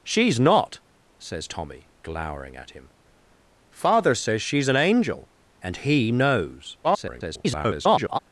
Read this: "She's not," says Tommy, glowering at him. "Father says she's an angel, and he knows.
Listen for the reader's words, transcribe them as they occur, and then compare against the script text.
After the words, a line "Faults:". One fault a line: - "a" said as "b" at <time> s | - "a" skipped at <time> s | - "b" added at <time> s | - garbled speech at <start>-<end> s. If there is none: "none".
"She's not," says Tommy, glowering at him. "Father says she's an angel, and he knows. [garbled]
Faults:
- garbled speech at 6.8-8.2 s